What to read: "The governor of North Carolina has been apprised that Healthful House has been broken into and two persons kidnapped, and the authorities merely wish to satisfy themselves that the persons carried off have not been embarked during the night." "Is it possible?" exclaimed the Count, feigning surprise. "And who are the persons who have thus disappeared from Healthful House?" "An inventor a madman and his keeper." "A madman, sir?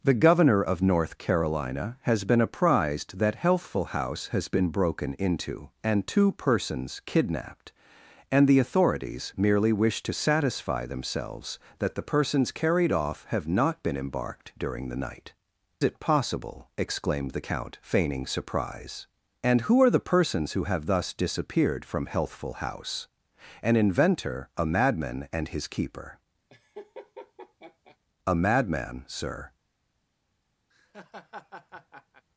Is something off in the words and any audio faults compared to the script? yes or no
yes